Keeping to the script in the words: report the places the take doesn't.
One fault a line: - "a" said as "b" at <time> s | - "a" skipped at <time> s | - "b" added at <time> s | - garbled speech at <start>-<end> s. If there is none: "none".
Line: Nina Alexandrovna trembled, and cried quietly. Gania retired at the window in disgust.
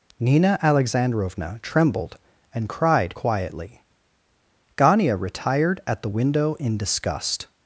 none